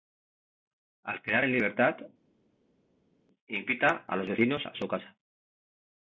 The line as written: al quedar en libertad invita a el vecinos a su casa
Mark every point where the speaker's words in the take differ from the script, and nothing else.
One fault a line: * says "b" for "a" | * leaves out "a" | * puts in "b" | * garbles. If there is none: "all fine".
* says "los" for "el"